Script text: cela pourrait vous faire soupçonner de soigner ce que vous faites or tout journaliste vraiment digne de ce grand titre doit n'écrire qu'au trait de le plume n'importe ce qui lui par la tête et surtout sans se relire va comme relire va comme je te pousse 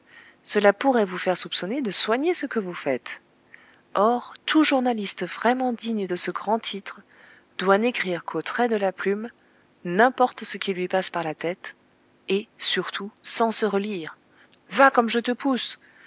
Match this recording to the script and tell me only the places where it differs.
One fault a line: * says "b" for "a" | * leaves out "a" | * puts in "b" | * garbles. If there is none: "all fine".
* says "la" for "le"
* puts in "passe"
* leaves out "relire va comme"